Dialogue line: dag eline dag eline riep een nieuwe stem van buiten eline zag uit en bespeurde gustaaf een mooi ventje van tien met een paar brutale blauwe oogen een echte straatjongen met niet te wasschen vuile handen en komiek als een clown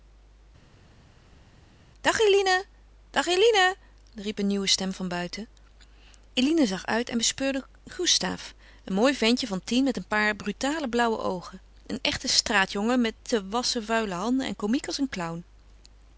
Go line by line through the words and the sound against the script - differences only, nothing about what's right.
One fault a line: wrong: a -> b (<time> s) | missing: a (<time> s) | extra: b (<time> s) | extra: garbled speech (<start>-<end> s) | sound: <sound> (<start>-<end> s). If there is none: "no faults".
missing: niet (13.2 s)